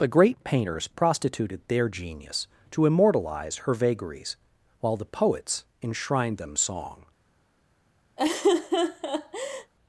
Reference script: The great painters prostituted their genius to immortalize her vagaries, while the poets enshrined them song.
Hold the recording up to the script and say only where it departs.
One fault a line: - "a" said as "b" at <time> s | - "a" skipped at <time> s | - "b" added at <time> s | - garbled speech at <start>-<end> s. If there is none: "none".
none